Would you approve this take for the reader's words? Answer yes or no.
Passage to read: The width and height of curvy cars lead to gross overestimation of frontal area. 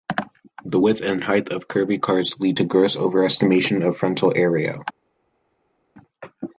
yes